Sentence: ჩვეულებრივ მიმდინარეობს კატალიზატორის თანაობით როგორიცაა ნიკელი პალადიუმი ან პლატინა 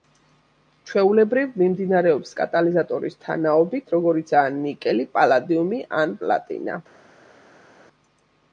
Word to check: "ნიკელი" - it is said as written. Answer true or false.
true